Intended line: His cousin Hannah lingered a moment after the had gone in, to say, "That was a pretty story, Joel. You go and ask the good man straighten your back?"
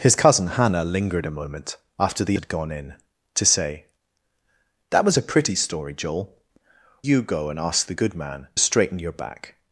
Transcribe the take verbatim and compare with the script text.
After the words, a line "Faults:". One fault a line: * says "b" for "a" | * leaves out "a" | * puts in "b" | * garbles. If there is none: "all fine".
His cousin Hannah lingered a moment after the had gone in, to say, "That was a pretty story, Joel. You go and ask the good man straighten your back?"
Faults:
all fine